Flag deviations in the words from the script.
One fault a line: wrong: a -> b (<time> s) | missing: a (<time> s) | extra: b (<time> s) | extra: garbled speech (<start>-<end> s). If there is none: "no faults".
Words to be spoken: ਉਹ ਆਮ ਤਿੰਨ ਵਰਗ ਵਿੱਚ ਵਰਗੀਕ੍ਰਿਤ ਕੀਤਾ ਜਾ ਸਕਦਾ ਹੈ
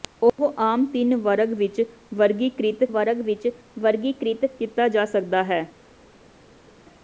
extra: ਵਰਗ ਵਿੱਚ ਵਰਗੀਕ੍ਰਿਤ (2.9 s)